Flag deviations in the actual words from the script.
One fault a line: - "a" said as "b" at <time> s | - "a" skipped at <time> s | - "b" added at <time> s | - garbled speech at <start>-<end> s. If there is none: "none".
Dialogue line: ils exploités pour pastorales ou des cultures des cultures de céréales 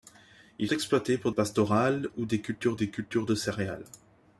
none